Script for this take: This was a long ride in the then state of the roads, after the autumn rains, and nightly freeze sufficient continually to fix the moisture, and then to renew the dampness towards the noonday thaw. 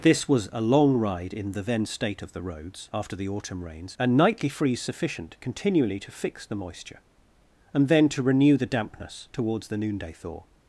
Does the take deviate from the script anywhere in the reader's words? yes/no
no